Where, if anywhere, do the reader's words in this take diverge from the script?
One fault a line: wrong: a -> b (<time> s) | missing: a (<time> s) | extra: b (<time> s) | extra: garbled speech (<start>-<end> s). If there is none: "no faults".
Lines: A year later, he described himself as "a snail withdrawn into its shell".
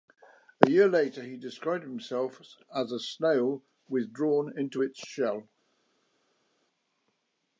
no faults